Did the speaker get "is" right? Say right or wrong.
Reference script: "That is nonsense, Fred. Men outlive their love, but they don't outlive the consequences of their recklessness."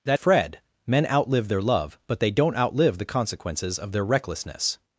wrong